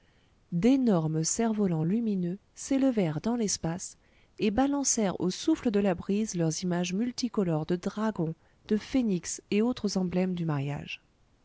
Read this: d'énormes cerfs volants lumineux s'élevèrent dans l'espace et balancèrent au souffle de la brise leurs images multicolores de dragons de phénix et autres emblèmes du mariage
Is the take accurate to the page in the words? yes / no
yes